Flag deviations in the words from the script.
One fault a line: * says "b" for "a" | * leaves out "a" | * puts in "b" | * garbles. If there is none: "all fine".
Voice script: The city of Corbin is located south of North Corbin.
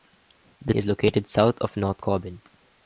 * leaves out "city of Corbin"